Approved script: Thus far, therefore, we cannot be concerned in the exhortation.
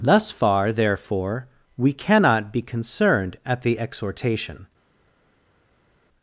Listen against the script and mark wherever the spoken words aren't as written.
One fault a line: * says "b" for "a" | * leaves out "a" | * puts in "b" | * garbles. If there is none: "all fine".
* says "at" for "in"